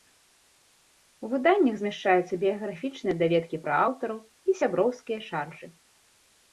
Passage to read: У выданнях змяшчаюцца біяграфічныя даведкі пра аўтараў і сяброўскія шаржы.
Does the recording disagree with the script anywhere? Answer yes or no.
no